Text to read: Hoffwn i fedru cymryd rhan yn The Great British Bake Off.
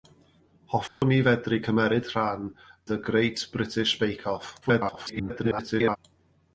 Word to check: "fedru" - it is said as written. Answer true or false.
true